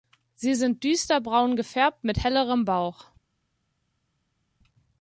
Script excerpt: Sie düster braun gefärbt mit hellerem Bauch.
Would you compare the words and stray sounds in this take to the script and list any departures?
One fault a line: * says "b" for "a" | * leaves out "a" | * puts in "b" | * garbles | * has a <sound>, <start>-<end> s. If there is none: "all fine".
* puts in "sind"